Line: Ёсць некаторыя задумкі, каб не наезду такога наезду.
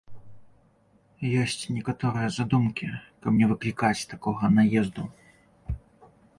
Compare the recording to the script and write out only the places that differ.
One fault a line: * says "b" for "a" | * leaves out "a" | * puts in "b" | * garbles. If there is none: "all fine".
* says "выклікаць" for "наезду"